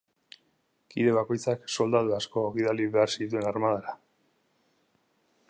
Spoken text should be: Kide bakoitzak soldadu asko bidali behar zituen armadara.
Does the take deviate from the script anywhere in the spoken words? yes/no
no